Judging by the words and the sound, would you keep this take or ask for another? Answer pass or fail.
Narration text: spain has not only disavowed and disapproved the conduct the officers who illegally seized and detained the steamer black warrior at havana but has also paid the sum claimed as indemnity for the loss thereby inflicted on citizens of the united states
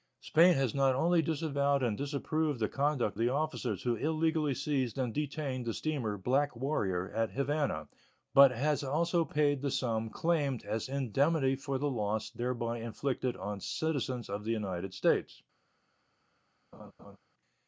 fail